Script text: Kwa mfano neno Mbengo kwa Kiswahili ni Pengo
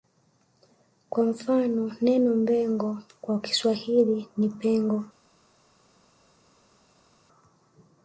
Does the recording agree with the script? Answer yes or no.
yes